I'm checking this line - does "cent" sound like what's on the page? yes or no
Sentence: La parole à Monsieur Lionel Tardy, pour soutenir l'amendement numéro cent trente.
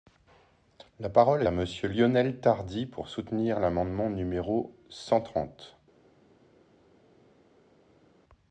yes